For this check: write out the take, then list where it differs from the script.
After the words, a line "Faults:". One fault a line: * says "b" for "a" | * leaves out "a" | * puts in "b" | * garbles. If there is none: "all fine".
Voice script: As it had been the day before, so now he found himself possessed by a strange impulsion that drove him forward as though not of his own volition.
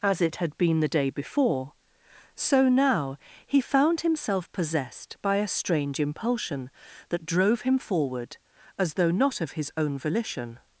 As it had been the day before, so now he found himself possessed by a strange impulsion that drove him forward as though not of his own volition.
Faults:
all fine